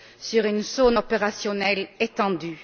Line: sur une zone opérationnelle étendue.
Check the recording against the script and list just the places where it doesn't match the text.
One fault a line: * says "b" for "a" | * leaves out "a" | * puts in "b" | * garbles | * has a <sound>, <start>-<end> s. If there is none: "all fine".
all fine